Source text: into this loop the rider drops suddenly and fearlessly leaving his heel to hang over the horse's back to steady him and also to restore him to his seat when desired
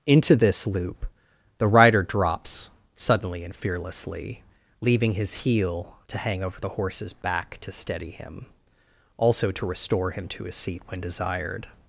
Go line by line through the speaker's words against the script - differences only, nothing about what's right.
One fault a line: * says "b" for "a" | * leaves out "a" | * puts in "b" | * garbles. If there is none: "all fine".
* leaves out "and"